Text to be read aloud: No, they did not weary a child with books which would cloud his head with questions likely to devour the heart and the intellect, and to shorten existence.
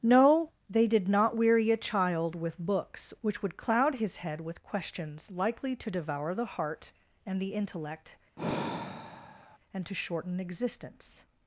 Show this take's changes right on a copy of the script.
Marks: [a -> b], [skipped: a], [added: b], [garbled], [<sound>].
No, they did not weary a child with books which would cloud his head with questions likely to devour the heart and the intellect, [sigh] and to shorten existence.